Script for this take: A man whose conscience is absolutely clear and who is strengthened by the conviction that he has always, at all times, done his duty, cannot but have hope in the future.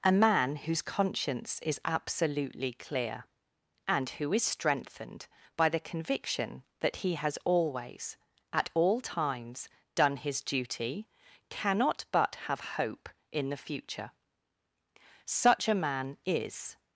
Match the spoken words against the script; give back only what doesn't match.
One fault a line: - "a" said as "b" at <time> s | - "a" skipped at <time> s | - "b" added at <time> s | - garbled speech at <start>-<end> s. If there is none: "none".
- "Such a man is" added at 15.2 s